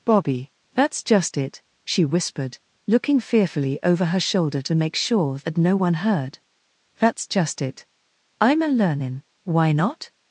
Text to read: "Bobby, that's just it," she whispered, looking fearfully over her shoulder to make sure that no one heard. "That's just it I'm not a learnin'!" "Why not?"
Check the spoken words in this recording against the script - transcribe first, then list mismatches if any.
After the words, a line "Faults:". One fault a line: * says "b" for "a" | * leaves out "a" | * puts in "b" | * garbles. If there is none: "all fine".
"Bobby, that's just it," she whispered, looking fearfully over her shoulder to make sure that no one heard. "That's just it I'm a learnin'!" "Why not?"
Faults:
* leaves out "not"